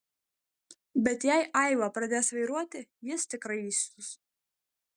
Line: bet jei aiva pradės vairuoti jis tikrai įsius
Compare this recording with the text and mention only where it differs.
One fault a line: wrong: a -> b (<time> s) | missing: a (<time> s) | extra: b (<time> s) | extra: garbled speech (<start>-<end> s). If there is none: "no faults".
no faults